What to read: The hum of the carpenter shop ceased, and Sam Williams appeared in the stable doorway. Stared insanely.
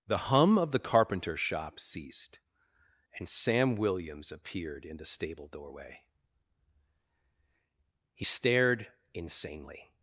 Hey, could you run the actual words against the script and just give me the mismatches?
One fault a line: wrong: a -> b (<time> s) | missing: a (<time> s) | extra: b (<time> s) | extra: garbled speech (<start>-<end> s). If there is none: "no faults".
extra: He (8.1 s)